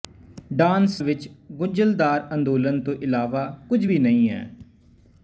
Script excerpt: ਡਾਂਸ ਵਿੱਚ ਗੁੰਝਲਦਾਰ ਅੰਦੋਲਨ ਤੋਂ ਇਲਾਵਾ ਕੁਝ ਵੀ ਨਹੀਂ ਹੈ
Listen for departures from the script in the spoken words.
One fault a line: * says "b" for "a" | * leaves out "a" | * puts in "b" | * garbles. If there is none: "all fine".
all fine